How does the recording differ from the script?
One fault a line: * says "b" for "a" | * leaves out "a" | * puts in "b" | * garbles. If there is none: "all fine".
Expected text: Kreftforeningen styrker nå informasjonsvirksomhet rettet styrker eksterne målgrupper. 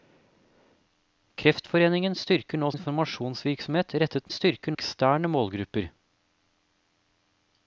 all fine